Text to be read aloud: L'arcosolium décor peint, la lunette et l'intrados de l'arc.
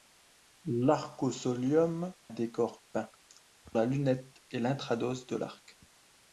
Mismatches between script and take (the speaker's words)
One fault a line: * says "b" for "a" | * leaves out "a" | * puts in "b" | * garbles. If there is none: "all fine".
all fine